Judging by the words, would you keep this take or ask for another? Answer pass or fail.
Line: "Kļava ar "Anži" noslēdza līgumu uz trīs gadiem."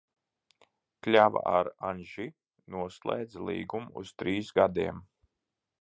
pass